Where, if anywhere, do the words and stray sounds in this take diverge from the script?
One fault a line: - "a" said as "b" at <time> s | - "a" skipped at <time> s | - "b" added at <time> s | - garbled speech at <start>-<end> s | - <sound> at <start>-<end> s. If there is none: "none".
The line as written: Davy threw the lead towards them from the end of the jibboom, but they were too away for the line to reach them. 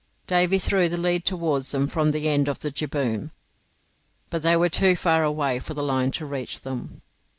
- "far" added at 4.9 s